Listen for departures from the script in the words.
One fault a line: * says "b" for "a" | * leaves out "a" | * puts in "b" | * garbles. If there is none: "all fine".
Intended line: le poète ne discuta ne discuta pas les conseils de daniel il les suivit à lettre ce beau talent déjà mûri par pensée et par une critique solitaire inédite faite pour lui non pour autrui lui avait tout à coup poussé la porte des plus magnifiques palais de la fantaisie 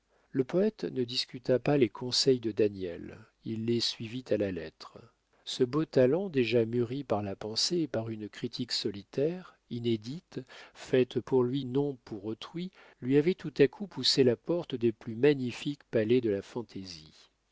* leaves out "ne discuta"
* puts in "la"
* puts in "la"